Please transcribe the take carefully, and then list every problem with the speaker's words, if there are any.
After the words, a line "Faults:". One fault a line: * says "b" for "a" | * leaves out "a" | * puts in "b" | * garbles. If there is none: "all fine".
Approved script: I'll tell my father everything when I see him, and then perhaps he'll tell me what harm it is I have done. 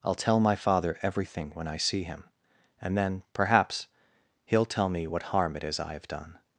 I'll tell my father everything when I see him, and then perhaps he'll tell me what harm it is I have done.
Faults:
all fine